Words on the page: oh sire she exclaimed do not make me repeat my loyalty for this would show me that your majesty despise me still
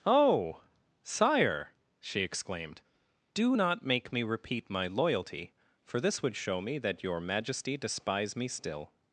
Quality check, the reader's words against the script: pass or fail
pass